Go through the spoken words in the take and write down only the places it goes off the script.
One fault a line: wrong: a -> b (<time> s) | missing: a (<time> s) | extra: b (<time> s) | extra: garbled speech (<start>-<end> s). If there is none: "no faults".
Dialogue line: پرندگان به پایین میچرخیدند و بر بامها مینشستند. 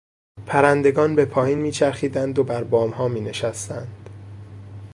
no faults